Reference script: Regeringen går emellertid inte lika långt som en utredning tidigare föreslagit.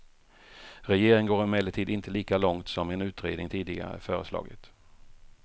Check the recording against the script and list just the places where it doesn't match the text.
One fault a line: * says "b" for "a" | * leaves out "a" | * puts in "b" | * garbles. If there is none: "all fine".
all fine